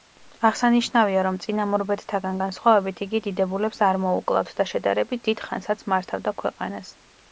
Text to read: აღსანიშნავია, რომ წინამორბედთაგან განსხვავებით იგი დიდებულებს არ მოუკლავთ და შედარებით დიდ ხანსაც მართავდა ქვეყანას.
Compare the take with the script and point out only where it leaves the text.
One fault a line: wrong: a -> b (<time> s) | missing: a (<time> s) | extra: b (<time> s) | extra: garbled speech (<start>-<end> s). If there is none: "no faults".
no faults